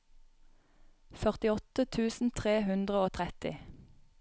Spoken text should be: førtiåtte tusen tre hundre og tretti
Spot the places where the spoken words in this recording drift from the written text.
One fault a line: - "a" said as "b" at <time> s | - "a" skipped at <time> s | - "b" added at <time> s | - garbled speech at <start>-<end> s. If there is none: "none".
none